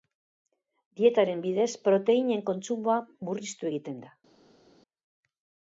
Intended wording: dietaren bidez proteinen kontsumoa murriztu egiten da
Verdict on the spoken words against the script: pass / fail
pass